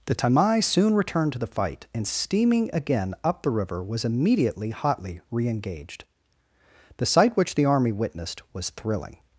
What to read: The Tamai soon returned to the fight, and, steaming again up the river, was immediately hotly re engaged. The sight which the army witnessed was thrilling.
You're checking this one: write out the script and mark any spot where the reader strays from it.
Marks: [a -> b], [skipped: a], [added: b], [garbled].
The Tamai soon returned to the fight, and, steaming again up the river, was immediately hotly re engaged. The sight which the army witnessed was thrilling.